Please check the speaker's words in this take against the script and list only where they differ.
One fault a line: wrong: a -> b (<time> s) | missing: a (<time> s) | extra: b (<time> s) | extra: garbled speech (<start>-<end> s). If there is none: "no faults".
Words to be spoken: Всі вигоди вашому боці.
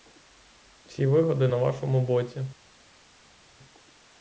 extra: на (1.5 s)